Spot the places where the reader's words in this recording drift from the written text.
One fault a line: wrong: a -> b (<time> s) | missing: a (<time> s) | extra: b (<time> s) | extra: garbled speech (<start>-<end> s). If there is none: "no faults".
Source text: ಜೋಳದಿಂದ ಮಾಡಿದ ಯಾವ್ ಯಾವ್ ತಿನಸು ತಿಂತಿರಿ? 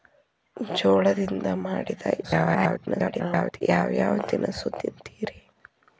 extra: garbled speech (2.2-3.6 s)